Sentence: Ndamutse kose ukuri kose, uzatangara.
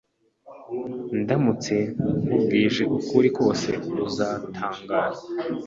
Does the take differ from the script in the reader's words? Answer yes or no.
yes